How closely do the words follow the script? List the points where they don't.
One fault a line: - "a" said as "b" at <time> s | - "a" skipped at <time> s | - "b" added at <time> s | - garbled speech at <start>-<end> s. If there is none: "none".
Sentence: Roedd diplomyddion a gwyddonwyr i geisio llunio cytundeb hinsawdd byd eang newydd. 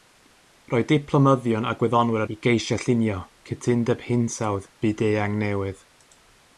none